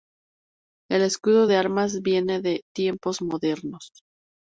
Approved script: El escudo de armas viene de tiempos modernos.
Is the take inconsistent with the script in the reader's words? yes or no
no